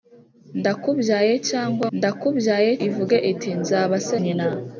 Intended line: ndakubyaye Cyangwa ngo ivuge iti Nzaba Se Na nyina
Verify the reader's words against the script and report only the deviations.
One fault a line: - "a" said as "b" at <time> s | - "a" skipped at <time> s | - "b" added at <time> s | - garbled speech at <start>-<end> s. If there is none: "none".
- "ngo" said as "ndakubyaye" at 2.0 s
- "Na" skipped at 4.2 s